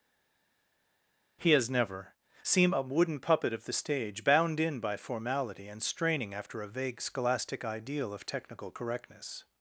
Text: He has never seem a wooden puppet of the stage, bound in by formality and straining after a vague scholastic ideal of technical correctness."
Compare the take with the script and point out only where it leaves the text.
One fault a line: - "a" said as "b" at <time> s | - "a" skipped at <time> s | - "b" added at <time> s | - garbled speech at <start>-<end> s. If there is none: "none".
none